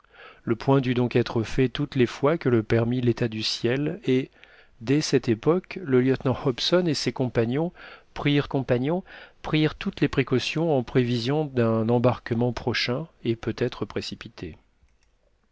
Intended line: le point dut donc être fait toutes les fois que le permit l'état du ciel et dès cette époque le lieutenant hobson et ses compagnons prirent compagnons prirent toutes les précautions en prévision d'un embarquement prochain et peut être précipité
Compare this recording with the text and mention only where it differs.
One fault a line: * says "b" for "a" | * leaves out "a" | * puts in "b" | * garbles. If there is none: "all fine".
all fine